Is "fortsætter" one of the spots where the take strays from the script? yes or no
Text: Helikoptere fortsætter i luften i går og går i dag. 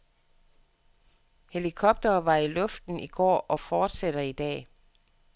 yes